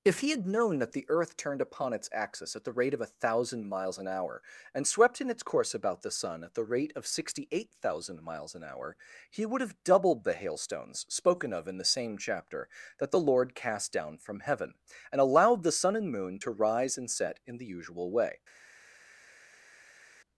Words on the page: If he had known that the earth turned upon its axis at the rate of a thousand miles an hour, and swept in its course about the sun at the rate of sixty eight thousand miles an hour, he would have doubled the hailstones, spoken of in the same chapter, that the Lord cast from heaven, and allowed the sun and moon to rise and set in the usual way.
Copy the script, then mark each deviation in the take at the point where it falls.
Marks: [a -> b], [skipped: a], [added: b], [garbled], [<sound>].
If he had known that the earth turned upon its axis at the rate of a thousand miles an hour, and swept in its course about the sun at the rate of sixty eight thousand miles an hour, he would have doubled the hailstones, spoken of in the same chapter, that the Lord cast [added: down] from heaven, and allowed the sun and moon to rise and set in the usual way.